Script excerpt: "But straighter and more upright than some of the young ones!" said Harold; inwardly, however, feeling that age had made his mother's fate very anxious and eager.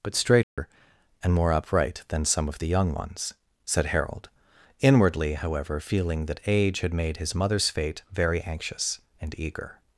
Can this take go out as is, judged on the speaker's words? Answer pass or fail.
pass